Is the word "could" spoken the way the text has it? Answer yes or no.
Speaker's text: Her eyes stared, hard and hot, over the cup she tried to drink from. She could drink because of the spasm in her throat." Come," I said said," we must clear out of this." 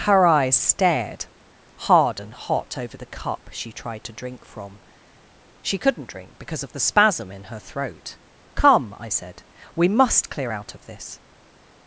no